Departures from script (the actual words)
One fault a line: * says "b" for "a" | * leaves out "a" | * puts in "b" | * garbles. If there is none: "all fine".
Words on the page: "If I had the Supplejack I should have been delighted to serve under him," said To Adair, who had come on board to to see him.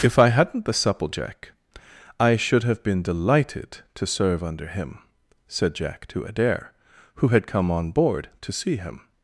* says "hadn't" for "had"
* puts in "Jack"
* leaves out "to"